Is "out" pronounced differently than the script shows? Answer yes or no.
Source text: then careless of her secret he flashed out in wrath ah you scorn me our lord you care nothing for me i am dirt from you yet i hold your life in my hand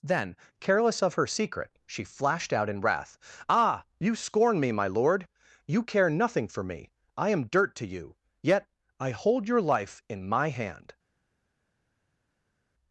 no